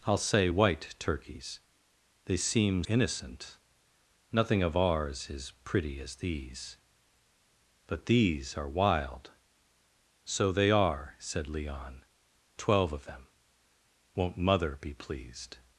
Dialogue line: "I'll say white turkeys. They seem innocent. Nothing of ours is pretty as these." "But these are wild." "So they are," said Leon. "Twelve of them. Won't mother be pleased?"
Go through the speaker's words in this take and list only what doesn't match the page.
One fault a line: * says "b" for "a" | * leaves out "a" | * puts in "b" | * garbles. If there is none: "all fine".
all fine